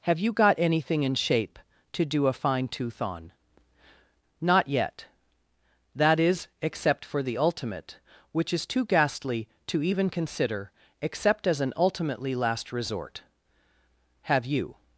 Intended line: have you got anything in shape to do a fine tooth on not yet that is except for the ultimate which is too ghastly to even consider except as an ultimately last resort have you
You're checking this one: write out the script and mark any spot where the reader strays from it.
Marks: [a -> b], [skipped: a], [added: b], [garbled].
have you got anything in shape to do a fine tooth on not yet that is except for the ultimate which is too ghastly to even consider except as an ultimately last resort have you